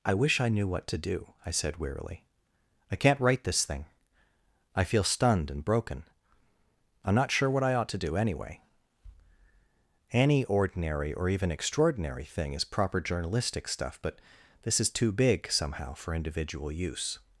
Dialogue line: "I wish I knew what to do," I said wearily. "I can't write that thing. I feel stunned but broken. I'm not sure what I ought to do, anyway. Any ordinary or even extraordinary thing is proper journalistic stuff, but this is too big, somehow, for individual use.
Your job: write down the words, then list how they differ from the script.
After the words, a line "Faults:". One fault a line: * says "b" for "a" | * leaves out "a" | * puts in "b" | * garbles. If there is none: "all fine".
"I wish I knew what to do," I said wearily. "I can't write this thing. I feel stunned and broken. I'm not sure what I ought to do, anyway. Any ordinary or even extraordinary thing is proper journalistic stuff, but this is too big, somehow, for individual use.
Faults:
* says "this" for "that"
* says "and" for "but"